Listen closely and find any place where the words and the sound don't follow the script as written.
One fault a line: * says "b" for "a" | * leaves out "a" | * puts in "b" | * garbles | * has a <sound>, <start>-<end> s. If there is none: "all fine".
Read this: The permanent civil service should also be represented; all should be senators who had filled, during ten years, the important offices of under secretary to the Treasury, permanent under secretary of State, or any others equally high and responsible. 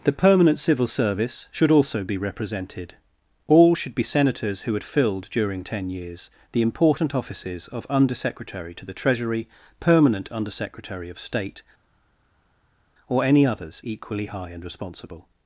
all fine